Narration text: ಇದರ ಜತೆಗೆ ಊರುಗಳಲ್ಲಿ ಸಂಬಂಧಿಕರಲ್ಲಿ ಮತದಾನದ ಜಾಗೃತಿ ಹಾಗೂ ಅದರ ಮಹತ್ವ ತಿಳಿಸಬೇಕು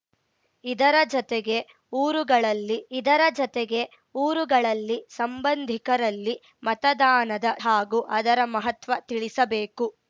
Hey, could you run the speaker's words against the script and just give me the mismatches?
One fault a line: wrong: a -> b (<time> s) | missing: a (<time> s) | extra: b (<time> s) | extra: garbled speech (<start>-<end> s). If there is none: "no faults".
extra: ಇದರ ಜತೆಗೆ ಊರುಗಳಲ್ಲಿ (2.9 s)
missing: ಜಾಗೃತಿ (7.4 s)